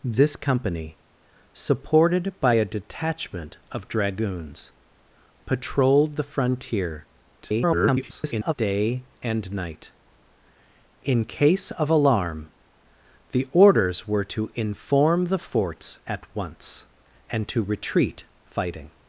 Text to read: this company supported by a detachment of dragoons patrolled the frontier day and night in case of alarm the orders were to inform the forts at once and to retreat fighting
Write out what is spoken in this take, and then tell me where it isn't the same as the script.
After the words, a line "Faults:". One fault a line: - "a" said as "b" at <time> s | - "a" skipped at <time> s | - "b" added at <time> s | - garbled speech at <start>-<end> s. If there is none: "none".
this company supported by a detachment of dragoons patrolled the frontier [garbled] day and night in case of alarm the orders were to inform the forts at once and to retreat fighting
Faults:
- garbled speech at 7.4-8.5 s